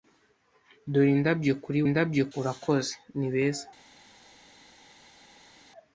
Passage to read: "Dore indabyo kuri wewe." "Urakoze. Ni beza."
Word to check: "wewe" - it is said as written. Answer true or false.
false